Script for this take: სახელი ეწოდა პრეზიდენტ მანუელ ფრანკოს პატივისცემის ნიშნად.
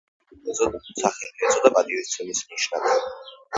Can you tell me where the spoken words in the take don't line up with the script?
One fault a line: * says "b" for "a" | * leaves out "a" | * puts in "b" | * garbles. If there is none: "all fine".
* leaves out "პრეზიდენტ მანუელ ფრანკოს"